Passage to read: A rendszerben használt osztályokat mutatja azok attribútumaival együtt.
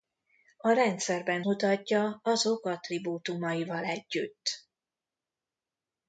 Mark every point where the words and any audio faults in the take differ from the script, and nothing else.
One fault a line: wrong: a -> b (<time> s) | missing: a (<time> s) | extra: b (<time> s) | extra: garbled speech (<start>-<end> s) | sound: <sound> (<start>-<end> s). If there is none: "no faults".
missing: használt osztályokat (1.4 s)